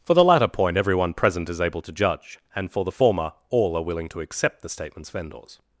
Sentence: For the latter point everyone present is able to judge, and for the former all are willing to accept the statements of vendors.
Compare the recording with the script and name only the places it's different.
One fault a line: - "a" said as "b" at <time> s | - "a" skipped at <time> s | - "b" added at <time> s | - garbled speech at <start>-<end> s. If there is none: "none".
- "of" skipped at 5.1 s